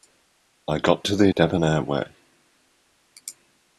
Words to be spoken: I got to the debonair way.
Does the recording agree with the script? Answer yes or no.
yes